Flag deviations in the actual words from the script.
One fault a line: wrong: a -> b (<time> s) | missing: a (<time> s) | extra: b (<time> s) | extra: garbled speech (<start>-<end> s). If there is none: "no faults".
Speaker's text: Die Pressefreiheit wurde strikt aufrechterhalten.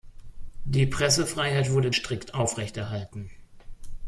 no faults